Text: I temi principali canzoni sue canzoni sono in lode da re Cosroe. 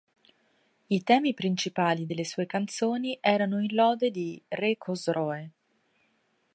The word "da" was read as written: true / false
false